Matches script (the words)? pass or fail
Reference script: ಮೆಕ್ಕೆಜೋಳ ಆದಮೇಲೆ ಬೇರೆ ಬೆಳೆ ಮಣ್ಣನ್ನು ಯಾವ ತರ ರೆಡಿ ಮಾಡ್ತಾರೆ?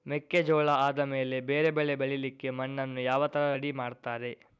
fail